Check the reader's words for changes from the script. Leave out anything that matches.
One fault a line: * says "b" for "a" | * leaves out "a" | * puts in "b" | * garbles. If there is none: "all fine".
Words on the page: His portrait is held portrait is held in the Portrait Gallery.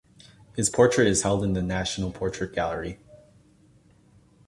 * leaves out "portrait is held"
* puts in "National"